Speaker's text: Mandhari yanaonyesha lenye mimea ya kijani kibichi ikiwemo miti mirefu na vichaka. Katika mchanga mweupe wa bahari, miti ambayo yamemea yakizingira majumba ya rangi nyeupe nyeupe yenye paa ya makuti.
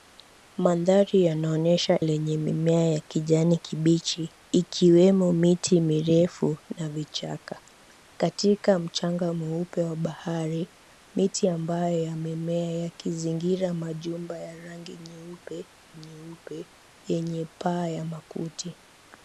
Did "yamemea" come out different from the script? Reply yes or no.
no